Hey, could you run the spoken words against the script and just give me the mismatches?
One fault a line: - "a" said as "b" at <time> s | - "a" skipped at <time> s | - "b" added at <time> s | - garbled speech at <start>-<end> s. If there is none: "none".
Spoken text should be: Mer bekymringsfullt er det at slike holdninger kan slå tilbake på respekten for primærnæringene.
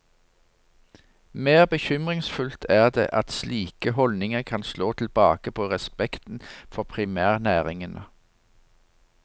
none